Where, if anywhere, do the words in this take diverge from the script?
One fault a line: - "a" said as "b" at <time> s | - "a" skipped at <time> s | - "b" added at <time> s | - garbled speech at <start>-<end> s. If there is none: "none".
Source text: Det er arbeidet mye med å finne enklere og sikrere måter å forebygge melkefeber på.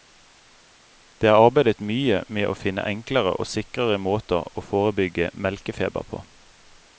none